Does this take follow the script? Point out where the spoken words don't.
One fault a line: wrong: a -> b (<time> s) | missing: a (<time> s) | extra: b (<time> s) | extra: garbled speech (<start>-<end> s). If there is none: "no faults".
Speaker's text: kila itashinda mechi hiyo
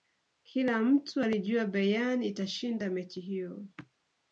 extra: mtu alijua bayern (0.8 s)